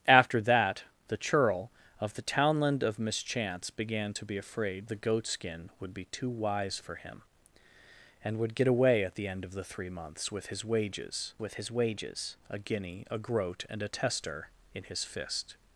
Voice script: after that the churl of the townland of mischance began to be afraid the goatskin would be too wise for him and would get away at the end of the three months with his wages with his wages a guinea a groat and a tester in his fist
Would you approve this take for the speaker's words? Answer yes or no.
yes